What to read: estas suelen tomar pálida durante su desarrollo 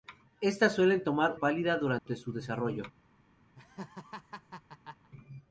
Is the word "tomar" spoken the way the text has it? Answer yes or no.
yes